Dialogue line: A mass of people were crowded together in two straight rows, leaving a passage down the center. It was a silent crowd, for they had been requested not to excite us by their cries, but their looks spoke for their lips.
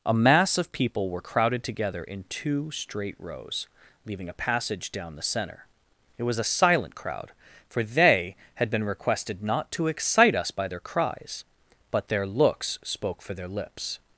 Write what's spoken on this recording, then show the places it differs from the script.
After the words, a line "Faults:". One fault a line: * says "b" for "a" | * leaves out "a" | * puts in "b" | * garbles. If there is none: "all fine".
A mass of people were crowded together in two straight rows, leaving a passage down the center. It was a silent crowd, for they had been requested not to excite us by their cries, but their looks spoke for their lips.
Faults:
all fine